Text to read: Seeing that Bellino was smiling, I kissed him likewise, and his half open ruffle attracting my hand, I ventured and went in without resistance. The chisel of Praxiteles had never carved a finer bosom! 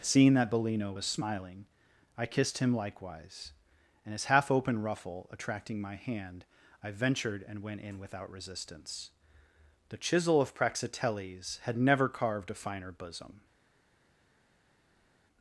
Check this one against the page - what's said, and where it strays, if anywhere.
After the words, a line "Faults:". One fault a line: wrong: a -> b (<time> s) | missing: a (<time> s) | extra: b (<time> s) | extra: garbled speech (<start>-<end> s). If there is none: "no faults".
Seeing that Bellino was smiling, I kissed him likewise, and his half open ruffle attracting my hand, I ventured and went in without resistance. The chisel of Praxiteles had never carved a finer bosom!
Faults:
no faults